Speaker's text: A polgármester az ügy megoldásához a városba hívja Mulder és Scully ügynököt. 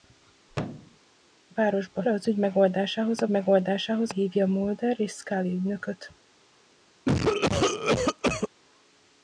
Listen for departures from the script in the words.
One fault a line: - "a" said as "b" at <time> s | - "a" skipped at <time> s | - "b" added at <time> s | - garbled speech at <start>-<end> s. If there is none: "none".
- "polgármester" said as "városba" at 1.5 s
- "városba" said as "megoldásához" at 3.3 s